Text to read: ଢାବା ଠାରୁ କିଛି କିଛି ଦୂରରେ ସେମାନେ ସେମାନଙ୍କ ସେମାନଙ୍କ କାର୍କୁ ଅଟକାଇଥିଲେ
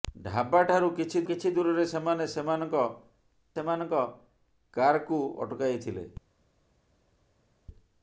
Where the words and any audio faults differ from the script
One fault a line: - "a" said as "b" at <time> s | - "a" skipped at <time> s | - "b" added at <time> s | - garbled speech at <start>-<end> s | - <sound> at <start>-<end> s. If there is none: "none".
none